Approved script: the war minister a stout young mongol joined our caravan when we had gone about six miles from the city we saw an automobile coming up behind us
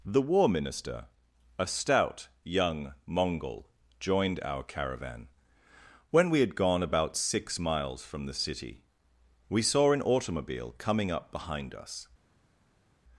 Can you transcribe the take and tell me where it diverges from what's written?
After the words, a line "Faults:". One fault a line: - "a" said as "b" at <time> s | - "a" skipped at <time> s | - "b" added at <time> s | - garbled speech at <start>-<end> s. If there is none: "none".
the war minister a stout young mongol joined our caravan when we had gone about six miles from the city we saw an automobile coming up behind us
Faults:
none